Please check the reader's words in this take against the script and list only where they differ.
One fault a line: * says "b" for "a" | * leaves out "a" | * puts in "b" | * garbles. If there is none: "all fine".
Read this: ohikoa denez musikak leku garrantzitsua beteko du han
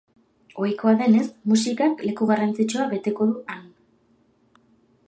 all fine